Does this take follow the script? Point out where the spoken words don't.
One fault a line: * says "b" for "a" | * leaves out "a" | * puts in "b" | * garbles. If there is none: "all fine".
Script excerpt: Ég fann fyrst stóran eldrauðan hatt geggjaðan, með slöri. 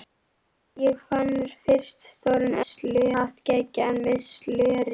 * says "slöri" for "eldrauðan"